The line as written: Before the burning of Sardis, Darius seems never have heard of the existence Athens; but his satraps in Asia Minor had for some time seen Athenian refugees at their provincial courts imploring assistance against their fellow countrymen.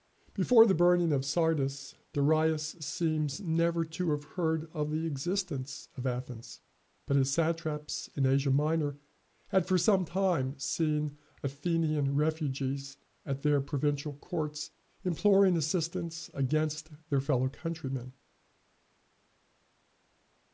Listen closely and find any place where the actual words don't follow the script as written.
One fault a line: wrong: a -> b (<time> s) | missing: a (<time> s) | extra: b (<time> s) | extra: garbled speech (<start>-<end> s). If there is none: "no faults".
extra: to (3.9 s)
extra: of (6.0 s)